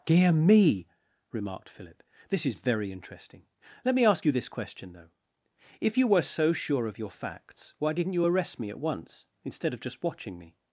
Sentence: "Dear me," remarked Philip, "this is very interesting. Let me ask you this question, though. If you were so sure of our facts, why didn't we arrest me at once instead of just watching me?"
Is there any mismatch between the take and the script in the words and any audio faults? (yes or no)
yes